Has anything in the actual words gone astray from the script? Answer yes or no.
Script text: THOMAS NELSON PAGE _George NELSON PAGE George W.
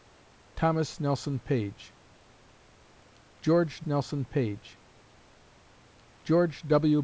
no